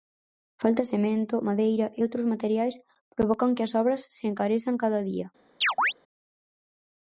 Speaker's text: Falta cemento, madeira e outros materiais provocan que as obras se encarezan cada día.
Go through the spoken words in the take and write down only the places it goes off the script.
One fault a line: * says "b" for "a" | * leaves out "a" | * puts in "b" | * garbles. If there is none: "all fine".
all fine